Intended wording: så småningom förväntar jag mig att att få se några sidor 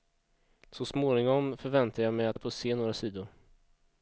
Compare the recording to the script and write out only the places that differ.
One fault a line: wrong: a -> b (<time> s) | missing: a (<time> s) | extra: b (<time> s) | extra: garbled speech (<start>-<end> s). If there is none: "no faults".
no faults